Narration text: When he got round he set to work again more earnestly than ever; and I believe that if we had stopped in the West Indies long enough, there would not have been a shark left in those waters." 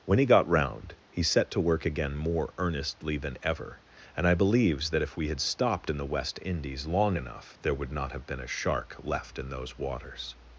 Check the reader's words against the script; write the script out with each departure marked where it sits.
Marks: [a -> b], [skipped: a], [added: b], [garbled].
When he got round he set to work again more earnestly than ever; and I [believe -> believes] that if we had stopped in the West Indies long enough, there would not have been a shark left in those waters."